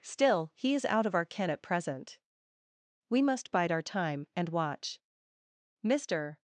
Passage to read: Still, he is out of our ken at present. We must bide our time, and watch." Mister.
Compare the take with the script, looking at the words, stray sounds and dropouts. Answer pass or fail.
pass